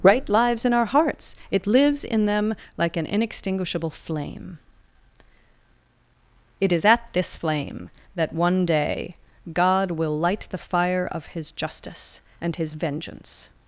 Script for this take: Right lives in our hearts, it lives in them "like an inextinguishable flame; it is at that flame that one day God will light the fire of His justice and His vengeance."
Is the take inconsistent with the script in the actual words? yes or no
yes